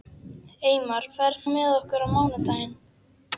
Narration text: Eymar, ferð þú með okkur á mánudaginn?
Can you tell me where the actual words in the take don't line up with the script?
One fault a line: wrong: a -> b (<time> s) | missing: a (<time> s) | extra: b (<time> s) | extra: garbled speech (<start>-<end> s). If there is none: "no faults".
missing: þú (1.4 s)